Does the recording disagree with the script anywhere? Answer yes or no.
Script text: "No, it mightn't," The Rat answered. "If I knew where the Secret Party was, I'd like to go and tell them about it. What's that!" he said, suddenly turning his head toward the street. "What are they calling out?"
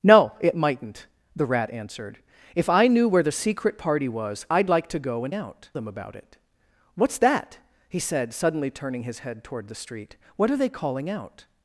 yes